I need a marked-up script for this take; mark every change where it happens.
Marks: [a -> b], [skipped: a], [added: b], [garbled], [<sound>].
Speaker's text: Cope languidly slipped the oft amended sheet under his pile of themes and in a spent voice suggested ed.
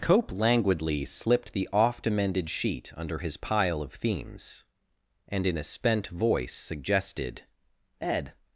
Cope languidly slipped the oft amended sheet under his pile of themes and in a spent voice suggested ed.